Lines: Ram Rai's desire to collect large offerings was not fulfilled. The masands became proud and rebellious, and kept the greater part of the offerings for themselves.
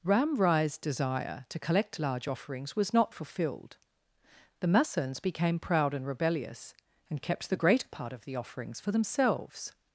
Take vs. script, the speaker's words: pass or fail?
pass